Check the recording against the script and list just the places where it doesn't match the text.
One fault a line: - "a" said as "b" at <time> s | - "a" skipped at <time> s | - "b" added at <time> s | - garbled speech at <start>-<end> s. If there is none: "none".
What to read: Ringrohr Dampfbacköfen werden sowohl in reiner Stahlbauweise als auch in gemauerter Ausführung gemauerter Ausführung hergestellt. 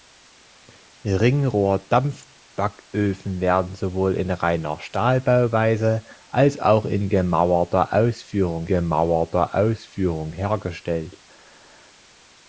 none